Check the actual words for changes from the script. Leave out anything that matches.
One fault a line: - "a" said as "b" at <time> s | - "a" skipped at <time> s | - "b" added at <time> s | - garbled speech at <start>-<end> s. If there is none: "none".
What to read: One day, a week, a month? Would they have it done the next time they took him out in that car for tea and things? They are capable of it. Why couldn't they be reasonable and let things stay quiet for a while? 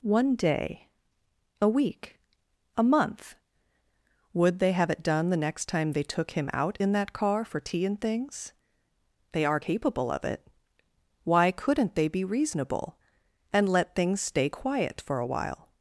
none